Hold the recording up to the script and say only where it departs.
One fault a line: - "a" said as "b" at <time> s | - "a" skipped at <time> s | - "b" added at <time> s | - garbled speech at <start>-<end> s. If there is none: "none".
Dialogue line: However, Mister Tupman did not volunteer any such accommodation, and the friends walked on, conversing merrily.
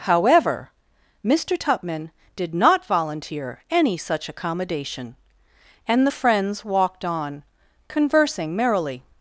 none